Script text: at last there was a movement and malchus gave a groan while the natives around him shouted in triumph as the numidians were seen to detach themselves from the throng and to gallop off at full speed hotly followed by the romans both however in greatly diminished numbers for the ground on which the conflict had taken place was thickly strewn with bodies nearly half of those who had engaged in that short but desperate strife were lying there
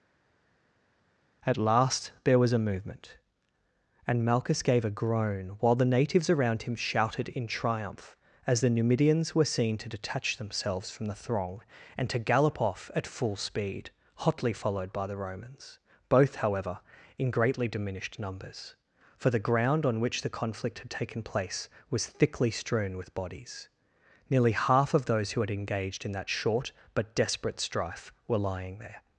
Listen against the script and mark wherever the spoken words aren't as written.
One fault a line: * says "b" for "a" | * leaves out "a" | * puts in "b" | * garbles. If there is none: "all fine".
all fine